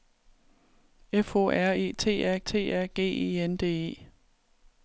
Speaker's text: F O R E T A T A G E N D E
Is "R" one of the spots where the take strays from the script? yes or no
no